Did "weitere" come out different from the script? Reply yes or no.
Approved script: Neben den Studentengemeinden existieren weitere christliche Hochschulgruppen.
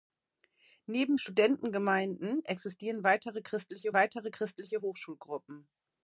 no